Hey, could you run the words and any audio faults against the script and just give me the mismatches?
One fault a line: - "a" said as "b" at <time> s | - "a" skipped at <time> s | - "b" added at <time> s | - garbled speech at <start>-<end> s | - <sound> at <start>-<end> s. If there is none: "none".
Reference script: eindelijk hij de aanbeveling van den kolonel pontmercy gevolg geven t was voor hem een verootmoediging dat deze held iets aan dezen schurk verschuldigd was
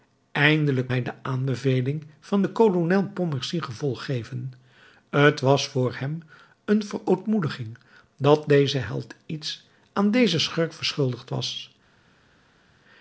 none